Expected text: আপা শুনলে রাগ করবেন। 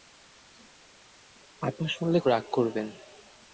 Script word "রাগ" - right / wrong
right